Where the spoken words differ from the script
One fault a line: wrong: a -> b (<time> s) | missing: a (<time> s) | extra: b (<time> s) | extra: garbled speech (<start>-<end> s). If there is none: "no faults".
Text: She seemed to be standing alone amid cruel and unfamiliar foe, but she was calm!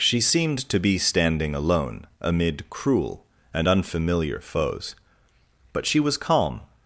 wrong: foe -> foes (4.4 s)